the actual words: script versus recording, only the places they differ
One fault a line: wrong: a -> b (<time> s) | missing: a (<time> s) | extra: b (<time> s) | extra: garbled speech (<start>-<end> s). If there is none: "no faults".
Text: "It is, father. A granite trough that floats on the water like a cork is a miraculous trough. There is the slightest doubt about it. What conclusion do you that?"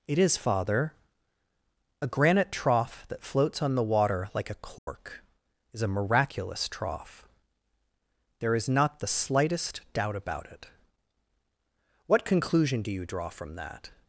extra: not (8.7 s)
extra: draw from (13.1 s)